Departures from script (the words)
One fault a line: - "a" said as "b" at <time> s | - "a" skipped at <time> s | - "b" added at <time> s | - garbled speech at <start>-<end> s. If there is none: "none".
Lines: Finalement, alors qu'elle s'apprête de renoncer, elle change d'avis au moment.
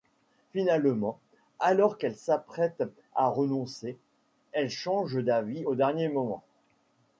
- "de" said as "à" at 3.1 s
- "dernier" added at 5.7 s